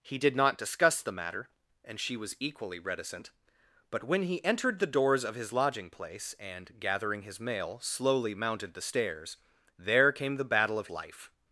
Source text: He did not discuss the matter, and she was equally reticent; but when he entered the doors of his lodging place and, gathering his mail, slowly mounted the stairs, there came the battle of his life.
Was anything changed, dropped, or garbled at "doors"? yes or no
no